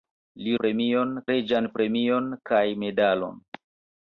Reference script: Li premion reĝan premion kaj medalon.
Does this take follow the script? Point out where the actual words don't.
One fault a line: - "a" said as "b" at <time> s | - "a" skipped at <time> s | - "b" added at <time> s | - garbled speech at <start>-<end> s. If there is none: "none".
none